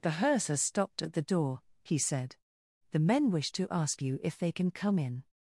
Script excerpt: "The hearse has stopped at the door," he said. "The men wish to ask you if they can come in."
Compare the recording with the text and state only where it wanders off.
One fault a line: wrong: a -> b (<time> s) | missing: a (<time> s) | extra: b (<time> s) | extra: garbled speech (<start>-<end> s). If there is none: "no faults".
no faults